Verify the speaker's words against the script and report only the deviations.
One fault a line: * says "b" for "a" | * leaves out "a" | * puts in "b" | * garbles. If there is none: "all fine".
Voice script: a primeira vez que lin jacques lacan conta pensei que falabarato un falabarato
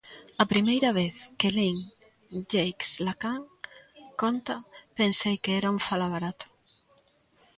* says "era" for "falabarato"